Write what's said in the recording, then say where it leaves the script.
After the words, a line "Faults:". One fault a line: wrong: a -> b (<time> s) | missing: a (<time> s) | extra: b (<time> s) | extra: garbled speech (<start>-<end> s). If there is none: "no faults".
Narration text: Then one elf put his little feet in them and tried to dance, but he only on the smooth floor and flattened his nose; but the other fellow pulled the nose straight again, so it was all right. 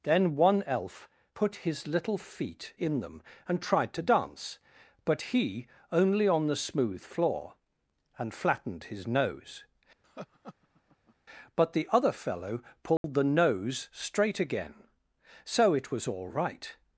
Then one elf put his little feet in them and tried to dance, but he only on the smooth floor and flattened his nose; but the other fellow pulled the nose straight again, so it was all right.
Faults:
no faults